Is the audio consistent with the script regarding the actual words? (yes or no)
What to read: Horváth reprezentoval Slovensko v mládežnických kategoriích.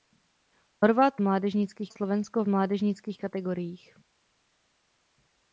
no